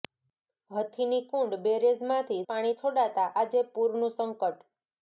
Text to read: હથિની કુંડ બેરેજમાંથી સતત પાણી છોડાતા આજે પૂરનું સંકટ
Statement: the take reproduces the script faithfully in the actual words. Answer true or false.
false